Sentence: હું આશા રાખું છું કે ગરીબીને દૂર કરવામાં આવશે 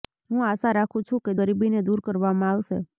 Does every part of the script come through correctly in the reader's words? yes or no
yes